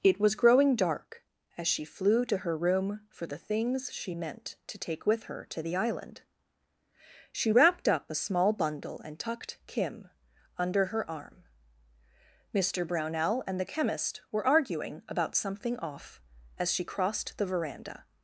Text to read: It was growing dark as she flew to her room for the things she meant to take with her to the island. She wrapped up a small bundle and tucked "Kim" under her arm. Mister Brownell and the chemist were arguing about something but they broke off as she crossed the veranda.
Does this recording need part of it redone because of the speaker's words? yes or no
yes